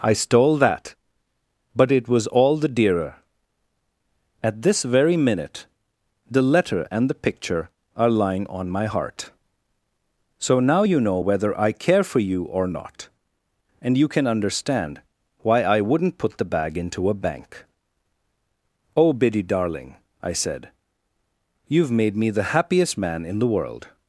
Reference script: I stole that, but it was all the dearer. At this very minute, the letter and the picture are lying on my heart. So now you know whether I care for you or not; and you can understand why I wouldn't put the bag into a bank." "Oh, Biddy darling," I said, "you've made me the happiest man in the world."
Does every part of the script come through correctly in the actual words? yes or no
yes